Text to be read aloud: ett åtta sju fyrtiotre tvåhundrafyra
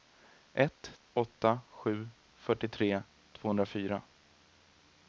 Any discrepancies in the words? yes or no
no